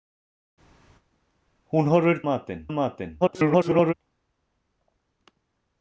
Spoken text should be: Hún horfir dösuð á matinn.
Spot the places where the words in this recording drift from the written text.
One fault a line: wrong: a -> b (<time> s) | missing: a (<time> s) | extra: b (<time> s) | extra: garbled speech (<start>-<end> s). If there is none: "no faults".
wrong: dösuð -> matinn (2.3 s)
extra: garbled speech (3.2-3.9 s)